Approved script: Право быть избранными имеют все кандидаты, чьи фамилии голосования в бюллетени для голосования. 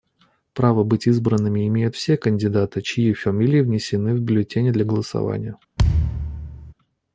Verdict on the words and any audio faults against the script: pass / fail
fail